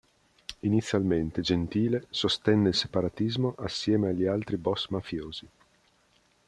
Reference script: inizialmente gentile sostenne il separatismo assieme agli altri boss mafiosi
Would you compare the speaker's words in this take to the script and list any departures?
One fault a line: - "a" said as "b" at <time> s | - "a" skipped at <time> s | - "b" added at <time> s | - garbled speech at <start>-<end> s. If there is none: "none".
none